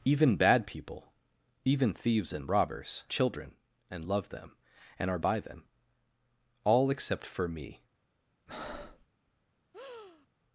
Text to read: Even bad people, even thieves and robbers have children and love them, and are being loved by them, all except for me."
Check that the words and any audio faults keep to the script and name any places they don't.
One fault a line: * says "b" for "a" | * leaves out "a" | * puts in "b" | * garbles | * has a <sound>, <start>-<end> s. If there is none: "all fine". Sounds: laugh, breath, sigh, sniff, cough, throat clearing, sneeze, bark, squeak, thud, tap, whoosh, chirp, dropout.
* leaves out "have"
* leaves out "being loved"
* has a breath, 8.5-9.1 s
* has a breath, 9.7-10.3 s